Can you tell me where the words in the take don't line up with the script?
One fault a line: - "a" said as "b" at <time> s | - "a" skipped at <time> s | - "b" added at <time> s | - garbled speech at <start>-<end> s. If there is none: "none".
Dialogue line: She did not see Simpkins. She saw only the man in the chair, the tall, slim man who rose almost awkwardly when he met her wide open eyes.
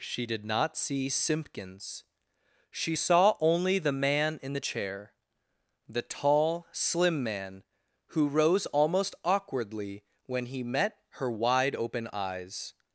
none